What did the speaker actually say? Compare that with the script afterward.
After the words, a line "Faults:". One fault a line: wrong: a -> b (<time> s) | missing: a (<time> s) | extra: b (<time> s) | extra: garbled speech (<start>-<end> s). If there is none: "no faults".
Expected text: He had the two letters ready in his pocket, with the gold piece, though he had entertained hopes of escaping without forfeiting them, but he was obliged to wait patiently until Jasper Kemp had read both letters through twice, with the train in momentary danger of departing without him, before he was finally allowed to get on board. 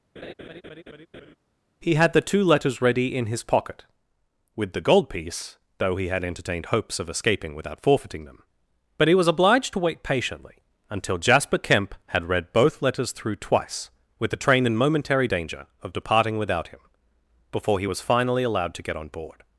He had the two letters ready in his pocket, with the gold piece, though he had entertained hopes of escaping without forfeiting them, but he was obliged to wait patiently until Jasper Kemp had read both letters through twice, with the train in momentary danger of departing without him, before he was finally allowed to get on board.
Faults:
no faults